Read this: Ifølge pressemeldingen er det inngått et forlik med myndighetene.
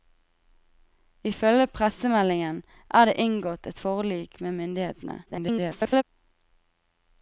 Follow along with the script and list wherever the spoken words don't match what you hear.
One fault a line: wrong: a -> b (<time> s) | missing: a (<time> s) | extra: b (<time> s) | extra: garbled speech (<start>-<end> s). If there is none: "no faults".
extra: garbled speech (5.3-6.0 s)